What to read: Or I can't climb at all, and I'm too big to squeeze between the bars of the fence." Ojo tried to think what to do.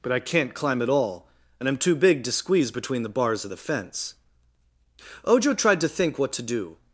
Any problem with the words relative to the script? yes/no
yes